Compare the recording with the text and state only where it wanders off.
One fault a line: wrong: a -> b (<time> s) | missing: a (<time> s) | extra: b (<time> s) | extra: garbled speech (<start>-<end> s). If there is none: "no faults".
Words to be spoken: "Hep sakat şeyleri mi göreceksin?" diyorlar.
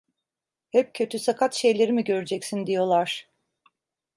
extra: kötü (0.9 s)